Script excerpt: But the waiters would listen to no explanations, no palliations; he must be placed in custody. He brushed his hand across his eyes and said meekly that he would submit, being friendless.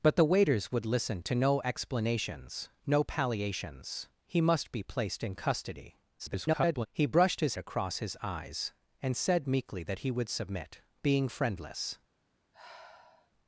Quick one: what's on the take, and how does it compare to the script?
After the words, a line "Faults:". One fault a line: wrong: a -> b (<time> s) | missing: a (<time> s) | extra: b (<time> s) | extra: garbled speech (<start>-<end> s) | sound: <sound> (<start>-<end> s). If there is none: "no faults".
But the waiters would listen to no explanations, no palliations; he must be placed in custody. [garbled] He brushed his across his eyes and said meekly that he would submit, being friendless.
Faults:
extra: garbled speech (6.2-6.9 s)
missing: hand (7.6 s)
sound: sigh (12.5-13.3 s)